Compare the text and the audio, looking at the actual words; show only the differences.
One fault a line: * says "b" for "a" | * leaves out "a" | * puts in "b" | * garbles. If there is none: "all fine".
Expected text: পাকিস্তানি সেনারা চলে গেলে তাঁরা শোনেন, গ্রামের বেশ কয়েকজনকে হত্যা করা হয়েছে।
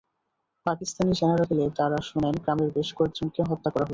* leaves out "চলে"